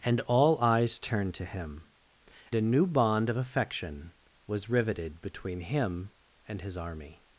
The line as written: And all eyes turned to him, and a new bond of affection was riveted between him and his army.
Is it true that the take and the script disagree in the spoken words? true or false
true